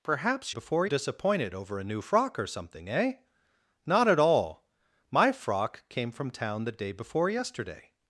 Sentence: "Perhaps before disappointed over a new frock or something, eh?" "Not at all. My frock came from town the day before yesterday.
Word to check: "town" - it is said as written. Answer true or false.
true